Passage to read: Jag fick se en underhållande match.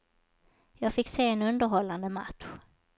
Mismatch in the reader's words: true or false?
false